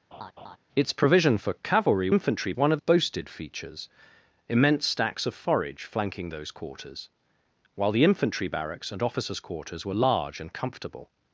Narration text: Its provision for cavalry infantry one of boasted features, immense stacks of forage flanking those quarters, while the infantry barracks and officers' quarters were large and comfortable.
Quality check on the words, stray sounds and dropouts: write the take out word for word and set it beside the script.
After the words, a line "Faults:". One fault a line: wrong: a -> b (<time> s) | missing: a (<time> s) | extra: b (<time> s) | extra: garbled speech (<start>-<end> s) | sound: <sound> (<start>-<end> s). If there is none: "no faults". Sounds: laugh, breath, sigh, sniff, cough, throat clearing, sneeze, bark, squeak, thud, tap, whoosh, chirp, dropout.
Its provision for cavalry infantry one of boasted features, immense stacks of forage flanking those quarters, while the infantry barracks and officers' quarters were large and comfortable.
Faults:
sound: laugh (0.1-0.6 s)